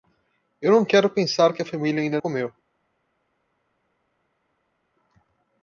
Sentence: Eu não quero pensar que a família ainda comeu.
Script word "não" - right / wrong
right